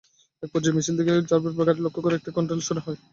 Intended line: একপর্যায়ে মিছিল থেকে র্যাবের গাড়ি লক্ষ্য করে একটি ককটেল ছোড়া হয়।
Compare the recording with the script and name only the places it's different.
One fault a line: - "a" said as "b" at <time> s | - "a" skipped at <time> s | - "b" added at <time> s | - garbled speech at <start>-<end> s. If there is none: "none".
none